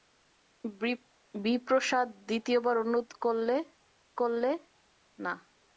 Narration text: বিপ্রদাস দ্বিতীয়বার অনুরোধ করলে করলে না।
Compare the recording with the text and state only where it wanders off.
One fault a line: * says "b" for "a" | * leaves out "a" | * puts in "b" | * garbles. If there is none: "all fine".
all fine